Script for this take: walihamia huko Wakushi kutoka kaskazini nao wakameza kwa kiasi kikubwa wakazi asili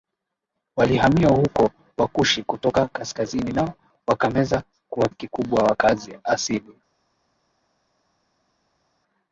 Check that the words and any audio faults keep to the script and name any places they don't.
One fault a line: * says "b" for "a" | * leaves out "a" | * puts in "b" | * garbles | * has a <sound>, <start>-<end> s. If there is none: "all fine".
* leaves out "kiasi"